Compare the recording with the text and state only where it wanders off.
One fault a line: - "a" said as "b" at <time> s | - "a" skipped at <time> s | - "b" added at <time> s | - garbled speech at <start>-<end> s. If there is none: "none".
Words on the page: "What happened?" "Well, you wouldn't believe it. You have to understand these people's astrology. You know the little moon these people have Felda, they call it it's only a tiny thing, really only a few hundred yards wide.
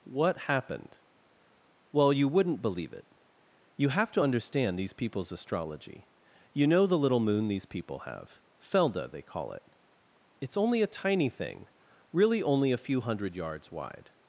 none